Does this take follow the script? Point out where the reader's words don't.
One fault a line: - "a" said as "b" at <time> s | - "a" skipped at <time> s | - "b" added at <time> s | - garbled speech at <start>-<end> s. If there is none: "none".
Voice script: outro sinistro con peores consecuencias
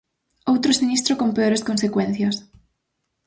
none